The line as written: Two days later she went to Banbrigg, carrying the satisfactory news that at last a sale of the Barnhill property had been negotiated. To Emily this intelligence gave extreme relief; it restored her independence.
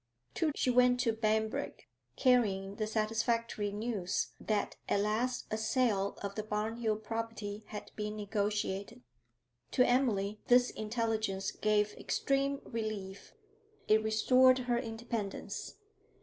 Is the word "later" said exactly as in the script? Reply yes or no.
no